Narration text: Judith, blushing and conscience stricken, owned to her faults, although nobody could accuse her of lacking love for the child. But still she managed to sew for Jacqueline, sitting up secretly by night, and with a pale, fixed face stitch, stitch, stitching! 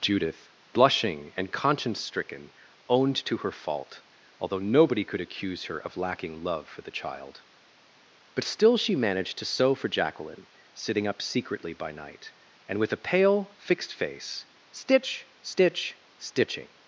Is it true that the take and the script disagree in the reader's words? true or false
true